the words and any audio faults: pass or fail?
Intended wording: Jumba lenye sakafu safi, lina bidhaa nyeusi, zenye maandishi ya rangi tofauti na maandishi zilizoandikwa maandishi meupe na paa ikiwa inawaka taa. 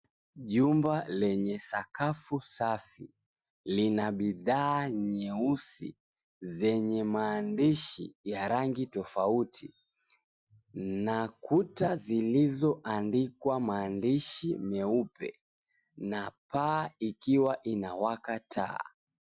fail